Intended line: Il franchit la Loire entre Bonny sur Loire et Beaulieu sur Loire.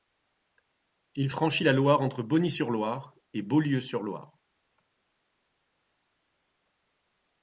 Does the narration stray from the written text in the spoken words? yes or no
no